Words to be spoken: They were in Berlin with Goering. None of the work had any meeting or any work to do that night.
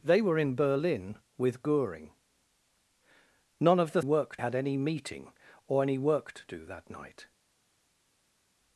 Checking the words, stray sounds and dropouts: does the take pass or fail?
pass